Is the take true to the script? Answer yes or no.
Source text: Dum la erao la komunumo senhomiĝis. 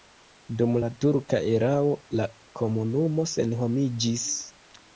no